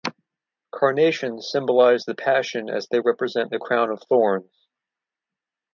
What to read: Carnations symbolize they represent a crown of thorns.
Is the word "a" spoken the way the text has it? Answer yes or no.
no